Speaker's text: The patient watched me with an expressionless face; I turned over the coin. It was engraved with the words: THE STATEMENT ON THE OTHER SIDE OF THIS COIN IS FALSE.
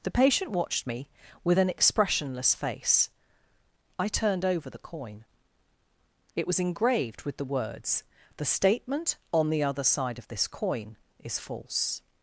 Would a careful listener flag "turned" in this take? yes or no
no